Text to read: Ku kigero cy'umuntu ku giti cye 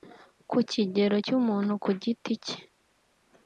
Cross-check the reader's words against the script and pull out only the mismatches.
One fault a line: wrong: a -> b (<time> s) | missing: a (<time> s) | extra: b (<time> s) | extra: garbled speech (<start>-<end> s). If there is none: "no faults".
no faults